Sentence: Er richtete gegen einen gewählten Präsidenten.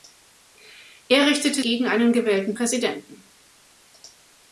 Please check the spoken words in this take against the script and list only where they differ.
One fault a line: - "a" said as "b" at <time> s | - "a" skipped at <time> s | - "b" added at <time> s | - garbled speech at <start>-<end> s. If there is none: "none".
none